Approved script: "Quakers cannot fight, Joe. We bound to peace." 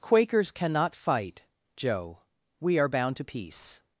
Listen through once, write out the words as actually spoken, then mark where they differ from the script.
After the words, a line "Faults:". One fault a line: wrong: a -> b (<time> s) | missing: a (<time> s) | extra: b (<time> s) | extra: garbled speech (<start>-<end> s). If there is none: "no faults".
"Quakers cannot fight, Joe. We are bound to peace."
Faults:
extra: are (2.8 s)